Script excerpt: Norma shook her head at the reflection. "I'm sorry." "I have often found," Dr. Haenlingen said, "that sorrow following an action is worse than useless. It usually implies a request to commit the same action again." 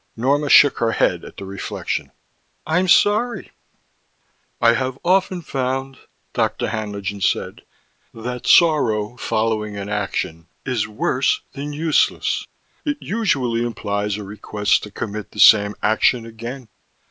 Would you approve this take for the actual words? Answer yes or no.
yes